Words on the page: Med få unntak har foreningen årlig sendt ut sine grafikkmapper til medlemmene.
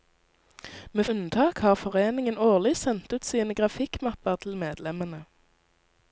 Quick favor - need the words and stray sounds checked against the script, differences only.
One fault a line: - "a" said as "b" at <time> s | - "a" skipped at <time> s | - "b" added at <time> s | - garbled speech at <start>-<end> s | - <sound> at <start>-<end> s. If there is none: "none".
- "få" skipped at 1.1 s